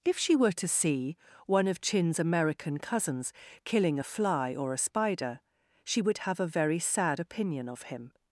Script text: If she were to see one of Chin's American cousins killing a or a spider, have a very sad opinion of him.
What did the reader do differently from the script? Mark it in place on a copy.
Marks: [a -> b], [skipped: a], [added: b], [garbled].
If she were to see one of Chin's American cousins killing a [added: fly] or a spider, [added: she would] have a very sad opinion of him.